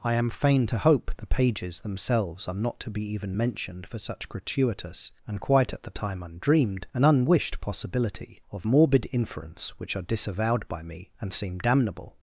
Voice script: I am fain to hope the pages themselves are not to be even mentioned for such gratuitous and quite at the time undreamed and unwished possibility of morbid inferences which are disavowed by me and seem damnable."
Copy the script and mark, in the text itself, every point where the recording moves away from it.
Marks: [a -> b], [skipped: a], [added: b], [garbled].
I am fain to hope the pages themselves are not to be even mentioned for such gratuitous and quite at the time undreamed and unwished possibility of morbid [inferences -> inference] which are disavowed by me and seem damnable."